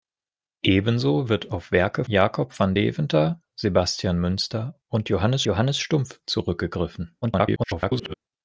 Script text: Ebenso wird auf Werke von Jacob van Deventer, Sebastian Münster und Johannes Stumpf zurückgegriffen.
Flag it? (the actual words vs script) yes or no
yes